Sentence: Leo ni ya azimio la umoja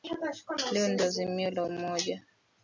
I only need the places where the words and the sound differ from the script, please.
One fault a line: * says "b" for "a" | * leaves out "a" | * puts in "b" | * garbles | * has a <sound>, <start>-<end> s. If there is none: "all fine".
all fine